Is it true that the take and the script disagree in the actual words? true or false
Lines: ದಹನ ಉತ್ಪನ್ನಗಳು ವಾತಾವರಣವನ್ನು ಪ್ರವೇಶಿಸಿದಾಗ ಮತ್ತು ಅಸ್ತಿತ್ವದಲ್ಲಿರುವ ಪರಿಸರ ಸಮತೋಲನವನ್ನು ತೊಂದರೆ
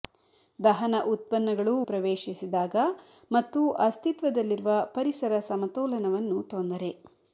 true